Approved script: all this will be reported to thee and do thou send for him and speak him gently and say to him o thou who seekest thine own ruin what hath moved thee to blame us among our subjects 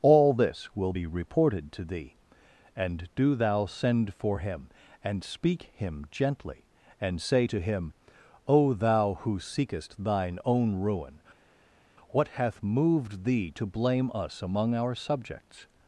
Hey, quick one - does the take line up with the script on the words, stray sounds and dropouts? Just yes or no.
yes